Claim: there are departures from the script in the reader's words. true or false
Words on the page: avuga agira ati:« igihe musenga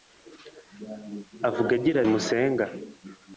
true